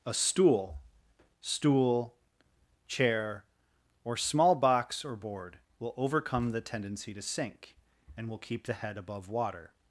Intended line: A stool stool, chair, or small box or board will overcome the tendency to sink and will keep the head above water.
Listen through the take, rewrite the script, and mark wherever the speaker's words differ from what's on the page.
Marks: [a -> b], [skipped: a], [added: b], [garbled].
A stool stool, chair, or small box or board will overcome the tendency to sink and will keep the head above water.